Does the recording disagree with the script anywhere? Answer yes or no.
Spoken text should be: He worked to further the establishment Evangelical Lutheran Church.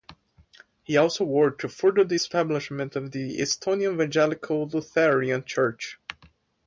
yes